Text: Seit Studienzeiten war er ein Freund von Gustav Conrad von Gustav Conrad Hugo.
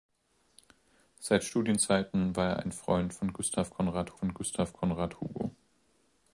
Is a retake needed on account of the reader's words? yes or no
no